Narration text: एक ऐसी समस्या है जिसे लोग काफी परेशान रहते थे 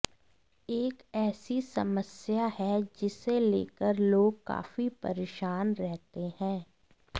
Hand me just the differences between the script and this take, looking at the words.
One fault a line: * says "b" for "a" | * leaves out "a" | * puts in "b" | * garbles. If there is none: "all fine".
* puts in "लेकर"
* says "हैं" for "थे"